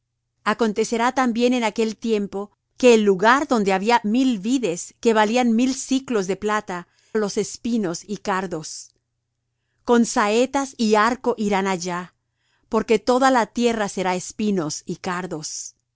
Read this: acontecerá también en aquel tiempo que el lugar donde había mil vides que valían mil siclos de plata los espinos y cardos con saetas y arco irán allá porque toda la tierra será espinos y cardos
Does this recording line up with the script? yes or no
yes